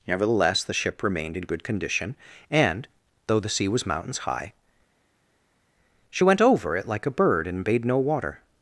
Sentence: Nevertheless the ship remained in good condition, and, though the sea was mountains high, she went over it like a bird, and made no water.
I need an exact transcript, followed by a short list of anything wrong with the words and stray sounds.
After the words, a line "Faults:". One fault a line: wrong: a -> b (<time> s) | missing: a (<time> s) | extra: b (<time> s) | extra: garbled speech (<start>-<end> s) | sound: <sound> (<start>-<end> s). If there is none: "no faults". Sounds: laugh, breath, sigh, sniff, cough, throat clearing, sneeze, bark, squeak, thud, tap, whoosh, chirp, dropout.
Nevertheless the ship remained in good condition, and, though the sea was mountains high, she went over it like a bird, and bade no water.
Faults:
wrong: made -> bade (7.6 s)